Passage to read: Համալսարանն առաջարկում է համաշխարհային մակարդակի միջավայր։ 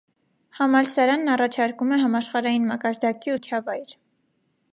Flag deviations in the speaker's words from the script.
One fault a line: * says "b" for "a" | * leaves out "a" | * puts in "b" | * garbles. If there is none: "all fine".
all fine